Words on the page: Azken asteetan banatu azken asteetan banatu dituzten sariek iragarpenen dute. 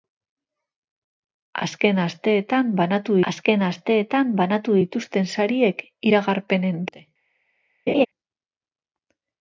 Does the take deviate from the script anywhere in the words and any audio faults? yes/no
yes